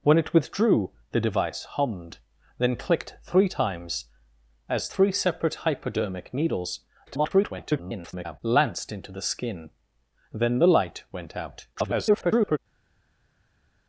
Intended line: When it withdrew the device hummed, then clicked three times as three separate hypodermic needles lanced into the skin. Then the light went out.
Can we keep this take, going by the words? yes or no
no